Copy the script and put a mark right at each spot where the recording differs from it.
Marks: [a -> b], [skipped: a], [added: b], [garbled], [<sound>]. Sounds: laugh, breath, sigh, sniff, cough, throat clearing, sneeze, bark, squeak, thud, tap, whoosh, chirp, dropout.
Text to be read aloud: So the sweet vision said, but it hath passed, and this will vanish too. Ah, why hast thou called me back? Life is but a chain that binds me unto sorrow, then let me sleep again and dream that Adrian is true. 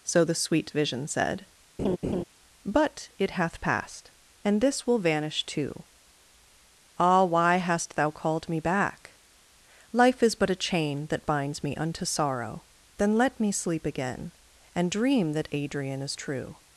So the sweet vision said, [laugh] but it hath passed, and this will vanish too. Ah, why hast thou called me back? Life is but a chain that binds me unto sorrow, then let me sleep again and dream that Adrian is true.